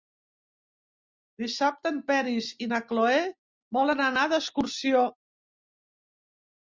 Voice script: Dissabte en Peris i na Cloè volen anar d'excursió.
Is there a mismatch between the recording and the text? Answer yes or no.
no